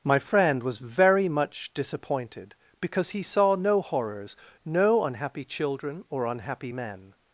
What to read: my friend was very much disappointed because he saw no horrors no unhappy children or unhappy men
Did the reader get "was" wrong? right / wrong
right